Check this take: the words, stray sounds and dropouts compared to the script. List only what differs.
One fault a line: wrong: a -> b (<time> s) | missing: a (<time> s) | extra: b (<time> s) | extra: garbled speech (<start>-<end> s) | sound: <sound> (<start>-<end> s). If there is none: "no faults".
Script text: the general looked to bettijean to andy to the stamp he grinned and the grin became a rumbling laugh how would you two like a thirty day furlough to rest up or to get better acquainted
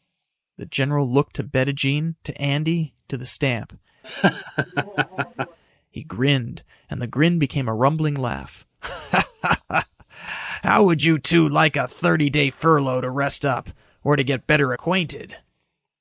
sound: laugh (4.0-5.6 s)